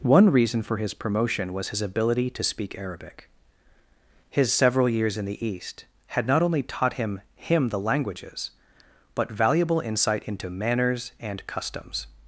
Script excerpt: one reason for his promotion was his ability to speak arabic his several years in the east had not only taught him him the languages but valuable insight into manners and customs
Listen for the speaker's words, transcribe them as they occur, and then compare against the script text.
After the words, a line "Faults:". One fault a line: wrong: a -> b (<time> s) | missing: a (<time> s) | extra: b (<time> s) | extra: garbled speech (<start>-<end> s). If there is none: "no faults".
one reason for his promotion was his ability to speak arabic his several years in the east had not only taught him him the languages but valuable insight into manners and customs
Faults:
no faults